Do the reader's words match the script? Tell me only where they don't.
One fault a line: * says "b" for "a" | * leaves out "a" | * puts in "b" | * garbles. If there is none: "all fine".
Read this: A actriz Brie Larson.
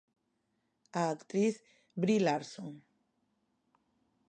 all fine